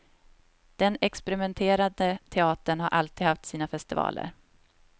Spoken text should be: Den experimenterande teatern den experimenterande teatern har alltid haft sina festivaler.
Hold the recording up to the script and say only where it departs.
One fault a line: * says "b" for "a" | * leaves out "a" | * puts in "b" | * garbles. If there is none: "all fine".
* leaves out "den experimenterande teatern"